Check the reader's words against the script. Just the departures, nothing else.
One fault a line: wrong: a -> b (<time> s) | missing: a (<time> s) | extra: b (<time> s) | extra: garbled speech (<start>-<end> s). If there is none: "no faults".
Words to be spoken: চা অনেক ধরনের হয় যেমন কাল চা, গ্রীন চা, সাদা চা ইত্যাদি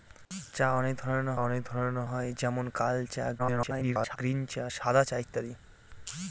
extra: অনেক ধরনের (1.4 s)
extra: garbled speech (3.4-4.2 s)